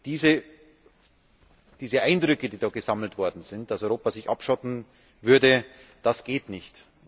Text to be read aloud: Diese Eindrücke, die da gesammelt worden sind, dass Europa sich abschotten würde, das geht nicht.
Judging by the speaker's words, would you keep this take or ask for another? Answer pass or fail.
pass